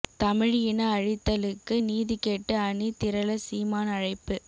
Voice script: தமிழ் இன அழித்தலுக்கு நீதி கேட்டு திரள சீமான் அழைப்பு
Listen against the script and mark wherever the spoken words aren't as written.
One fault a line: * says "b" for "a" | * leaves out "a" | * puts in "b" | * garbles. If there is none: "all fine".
* puts in "அணி"